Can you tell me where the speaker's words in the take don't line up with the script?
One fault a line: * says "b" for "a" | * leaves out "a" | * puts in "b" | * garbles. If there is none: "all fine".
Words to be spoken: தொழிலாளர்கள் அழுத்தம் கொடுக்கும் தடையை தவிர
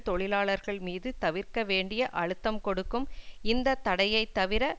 * puts in "மீது தவிர்க்க வேண்டிய"
* puts in "இந்த"